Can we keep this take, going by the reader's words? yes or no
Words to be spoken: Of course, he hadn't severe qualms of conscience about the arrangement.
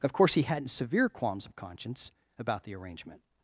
yes